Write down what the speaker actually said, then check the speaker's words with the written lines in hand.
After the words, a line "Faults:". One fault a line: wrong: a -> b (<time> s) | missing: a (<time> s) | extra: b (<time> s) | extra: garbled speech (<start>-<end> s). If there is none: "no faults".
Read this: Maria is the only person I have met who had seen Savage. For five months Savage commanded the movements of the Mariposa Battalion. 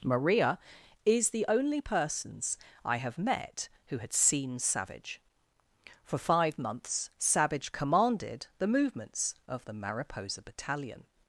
Maria is the only persons I have met who had seen Savage. For five months Savage commanded the movements of the Mariposa Battalion.
Faults:
wrong: person -> persons (1.8 s)